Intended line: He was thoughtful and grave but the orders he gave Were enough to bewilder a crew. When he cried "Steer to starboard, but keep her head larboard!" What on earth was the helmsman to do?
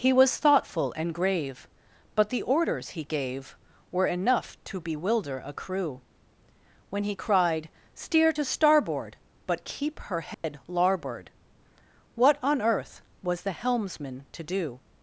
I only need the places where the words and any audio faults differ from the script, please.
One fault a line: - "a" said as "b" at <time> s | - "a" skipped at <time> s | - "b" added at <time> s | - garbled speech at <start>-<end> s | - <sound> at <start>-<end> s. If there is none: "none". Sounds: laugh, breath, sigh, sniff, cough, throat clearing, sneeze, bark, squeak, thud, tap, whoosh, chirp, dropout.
- dropout at 10.3-10.4 s